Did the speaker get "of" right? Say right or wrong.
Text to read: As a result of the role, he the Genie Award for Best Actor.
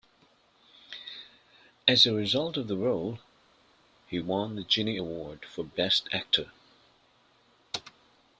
right